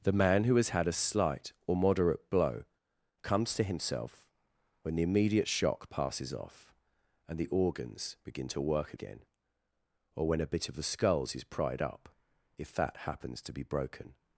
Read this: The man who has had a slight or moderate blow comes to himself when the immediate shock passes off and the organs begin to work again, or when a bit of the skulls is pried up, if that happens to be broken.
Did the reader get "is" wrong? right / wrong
right